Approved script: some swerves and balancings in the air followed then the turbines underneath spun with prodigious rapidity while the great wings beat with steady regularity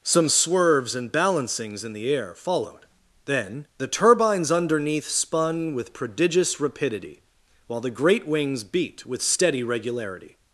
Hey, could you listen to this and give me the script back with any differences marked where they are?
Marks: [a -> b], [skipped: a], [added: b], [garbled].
some swerves and balancings in the air followed then the turbines underneath spun with prodigious rapidity while the great wings beat with steady regularity